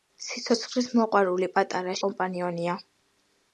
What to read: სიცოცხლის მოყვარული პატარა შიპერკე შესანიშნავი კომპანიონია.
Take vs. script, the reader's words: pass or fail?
fail